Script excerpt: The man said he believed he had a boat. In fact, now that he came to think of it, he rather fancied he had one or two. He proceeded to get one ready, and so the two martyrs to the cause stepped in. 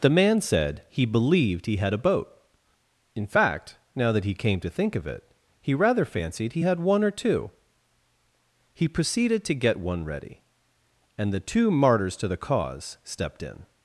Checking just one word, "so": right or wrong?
wrong